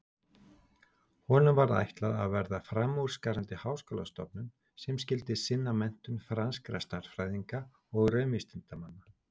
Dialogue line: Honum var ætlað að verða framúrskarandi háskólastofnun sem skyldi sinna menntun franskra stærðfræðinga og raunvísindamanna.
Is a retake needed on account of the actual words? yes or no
no